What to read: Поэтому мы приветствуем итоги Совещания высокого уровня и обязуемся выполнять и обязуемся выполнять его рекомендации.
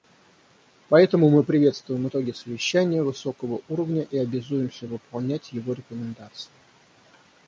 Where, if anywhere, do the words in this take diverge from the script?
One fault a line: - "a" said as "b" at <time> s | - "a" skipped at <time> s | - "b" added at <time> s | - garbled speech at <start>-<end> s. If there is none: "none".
- "и обязуемся выполнять" skipped at 5.5 s